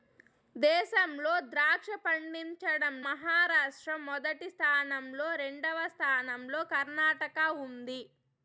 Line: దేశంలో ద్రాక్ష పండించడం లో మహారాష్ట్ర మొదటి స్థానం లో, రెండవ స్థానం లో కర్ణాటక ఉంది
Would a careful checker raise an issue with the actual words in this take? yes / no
yes